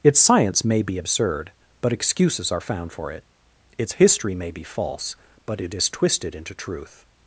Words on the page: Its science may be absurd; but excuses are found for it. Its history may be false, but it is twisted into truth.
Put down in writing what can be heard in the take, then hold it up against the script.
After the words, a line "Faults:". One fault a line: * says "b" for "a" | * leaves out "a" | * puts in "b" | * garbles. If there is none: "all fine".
Its science may be absurd; but excuses are found for it. Its history may be false, but it is twisted into truth.
Faults:
all fine